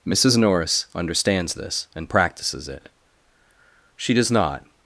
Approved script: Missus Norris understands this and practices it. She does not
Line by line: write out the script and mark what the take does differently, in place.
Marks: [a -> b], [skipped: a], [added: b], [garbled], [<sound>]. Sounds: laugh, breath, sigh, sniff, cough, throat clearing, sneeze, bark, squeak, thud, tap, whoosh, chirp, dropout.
Missus Norris understands this and practices it. She does not